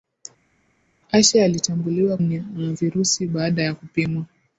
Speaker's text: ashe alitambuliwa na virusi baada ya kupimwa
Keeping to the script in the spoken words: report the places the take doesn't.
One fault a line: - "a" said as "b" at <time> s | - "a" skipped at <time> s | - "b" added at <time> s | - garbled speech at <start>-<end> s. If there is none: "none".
none